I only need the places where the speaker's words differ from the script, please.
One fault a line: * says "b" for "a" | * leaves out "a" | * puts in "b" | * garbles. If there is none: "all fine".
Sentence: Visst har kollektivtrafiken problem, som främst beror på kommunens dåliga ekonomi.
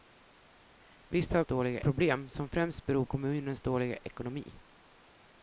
* says "dåliga" for "kollektivtrafiken"
* leaves out "på"